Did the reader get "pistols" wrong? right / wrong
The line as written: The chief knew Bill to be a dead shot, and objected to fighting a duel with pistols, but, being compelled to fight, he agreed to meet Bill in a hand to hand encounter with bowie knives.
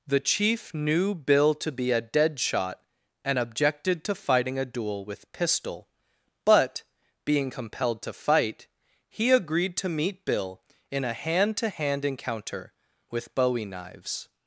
wrong